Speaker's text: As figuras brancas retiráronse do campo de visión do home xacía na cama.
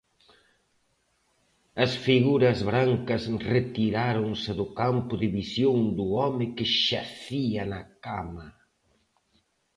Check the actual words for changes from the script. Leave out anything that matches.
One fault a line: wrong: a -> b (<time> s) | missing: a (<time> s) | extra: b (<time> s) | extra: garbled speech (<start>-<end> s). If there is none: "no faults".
extra: que (6.6 s)